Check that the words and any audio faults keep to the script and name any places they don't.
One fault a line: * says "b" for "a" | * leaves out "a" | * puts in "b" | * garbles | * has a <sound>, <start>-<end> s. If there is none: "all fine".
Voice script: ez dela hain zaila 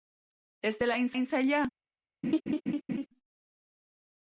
* puts in "hain"
* has a laugh, 2.2-3.1 s